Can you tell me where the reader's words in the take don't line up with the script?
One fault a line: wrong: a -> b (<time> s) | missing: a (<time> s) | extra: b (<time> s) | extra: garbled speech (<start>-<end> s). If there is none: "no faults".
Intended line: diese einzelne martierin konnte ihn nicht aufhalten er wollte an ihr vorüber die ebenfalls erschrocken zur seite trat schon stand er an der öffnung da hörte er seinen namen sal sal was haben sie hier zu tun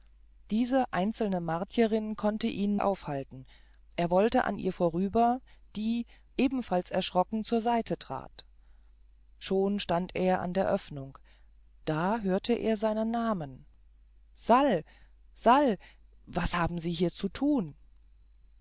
missing: nicht (2.8 s)